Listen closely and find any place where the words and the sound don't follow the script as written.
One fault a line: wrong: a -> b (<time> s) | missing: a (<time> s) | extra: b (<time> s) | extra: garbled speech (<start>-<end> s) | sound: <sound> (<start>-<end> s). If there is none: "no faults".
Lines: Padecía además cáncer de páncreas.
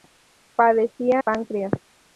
missing: además cáncer de (1.2 s)